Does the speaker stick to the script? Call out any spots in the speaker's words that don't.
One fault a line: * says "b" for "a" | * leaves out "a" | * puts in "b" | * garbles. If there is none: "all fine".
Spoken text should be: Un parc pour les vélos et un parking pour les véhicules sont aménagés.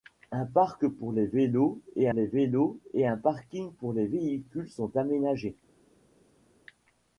* puts in "les vélos et"